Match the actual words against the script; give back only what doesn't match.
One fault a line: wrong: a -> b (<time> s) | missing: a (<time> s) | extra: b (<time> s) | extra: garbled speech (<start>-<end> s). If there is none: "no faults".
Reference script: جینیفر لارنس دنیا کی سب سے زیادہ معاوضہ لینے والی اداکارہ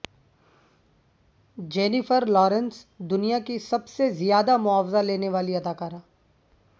no faults